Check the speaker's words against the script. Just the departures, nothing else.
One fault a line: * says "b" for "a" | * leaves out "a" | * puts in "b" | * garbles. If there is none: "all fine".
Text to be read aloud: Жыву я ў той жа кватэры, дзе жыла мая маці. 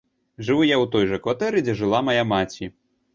all fine